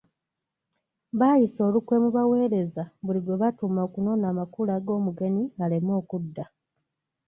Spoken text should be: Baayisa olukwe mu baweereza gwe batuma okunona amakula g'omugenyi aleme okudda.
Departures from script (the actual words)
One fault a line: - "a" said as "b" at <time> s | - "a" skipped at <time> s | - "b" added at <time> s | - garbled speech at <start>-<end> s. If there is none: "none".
- "buli" added at 3.0 s